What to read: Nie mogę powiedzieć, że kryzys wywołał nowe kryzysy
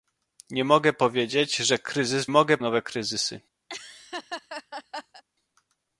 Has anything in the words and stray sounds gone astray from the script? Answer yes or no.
yes